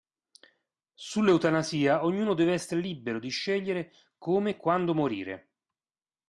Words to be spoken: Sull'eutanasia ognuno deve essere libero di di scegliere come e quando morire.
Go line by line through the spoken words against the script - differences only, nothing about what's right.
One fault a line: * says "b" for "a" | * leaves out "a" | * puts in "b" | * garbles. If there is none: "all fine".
* leaves out "di"